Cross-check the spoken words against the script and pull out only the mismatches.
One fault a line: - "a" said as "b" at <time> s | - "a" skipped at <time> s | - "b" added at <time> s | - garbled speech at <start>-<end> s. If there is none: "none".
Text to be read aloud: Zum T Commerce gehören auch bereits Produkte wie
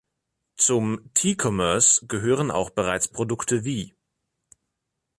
none